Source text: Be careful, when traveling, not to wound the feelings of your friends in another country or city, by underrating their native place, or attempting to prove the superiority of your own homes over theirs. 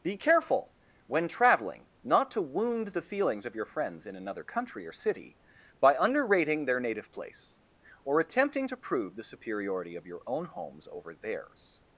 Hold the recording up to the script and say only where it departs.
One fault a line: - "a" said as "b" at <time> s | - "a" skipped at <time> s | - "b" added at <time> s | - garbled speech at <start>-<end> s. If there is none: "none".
none